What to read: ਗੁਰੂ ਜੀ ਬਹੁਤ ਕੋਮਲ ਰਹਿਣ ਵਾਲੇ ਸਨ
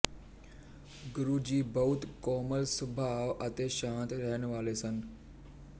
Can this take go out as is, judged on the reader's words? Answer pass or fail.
fail